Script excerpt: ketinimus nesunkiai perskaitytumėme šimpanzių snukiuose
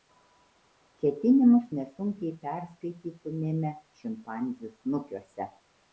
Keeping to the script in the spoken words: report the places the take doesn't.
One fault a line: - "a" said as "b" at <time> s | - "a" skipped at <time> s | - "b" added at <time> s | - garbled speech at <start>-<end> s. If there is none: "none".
none